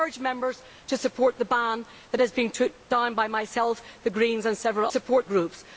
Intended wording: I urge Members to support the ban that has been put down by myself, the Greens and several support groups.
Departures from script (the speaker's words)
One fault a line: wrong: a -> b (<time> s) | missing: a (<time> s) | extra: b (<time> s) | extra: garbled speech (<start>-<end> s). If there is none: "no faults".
no faults